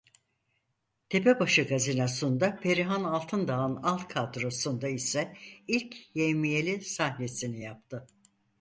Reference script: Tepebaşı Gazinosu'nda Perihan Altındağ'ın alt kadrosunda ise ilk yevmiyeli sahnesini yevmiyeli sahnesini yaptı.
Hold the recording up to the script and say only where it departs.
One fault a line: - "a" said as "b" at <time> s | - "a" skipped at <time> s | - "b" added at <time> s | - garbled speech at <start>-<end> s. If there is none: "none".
- "yevmiyeli sahnesini" skipped at 7.6 s